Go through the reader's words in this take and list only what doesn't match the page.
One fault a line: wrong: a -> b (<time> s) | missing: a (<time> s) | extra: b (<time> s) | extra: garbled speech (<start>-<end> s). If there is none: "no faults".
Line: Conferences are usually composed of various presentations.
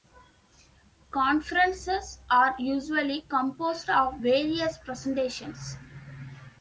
no faults